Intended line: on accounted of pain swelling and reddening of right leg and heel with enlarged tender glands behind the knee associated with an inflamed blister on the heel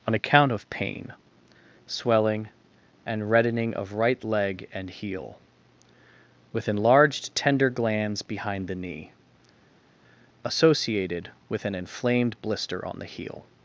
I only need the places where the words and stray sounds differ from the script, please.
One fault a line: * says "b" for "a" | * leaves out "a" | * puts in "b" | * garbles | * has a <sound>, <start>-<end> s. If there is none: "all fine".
* says "account" for "accounted"